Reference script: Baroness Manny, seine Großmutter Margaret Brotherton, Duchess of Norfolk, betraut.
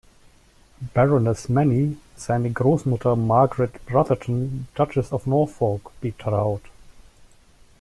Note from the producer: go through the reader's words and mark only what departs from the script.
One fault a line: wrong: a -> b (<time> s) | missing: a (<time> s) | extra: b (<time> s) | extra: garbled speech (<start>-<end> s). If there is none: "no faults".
no faults